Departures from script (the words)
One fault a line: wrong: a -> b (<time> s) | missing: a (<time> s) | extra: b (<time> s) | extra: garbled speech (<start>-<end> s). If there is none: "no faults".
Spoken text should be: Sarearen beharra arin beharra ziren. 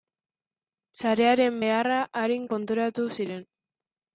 wrong: beharra -> konturatu (2.5 s)